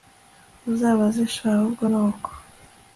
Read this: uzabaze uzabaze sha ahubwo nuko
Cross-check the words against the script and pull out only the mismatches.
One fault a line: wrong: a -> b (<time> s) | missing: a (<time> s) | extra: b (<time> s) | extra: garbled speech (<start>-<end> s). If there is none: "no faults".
missing: uzabaze (1.2 s)